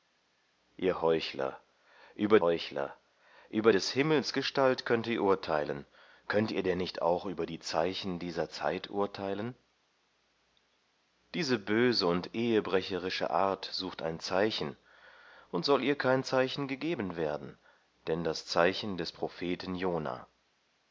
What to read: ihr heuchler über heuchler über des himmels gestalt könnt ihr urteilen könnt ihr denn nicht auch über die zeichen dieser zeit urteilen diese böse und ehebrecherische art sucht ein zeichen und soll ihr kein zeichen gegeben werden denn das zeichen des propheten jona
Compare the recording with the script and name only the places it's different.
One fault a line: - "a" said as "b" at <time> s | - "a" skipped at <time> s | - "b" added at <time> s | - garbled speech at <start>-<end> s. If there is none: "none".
none